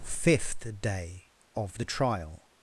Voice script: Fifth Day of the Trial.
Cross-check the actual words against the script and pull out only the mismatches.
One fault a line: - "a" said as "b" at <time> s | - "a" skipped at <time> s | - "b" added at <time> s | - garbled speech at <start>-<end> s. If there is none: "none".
none